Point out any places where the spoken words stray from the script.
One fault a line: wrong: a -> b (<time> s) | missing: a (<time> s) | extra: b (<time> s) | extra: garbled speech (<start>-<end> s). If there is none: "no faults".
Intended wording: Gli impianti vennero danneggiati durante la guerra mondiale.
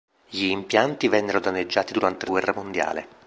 no faults